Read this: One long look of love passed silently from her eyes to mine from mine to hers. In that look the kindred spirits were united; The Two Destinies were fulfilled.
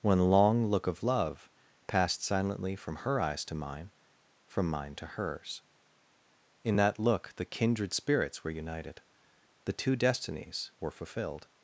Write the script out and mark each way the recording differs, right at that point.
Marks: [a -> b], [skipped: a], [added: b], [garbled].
One long look of love passed silently from her eyes to mine from mine to hers. In that look the kindred spirits were united; The Two Destinies were fulfilled.